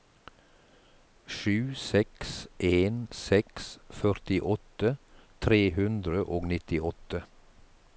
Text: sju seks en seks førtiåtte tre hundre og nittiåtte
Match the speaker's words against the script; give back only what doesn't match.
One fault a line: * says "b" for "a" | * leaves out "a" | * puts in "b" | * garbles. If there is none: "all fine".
all fine